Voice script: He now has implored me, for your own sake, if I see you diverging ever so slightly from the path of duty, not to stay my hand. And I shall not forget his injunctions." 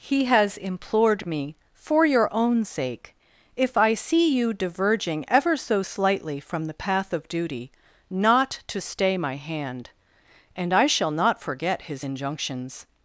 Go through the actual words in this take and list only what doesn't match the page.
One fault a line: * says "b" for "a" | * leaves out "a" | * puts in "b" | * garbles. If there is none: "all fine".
* leaves out "now"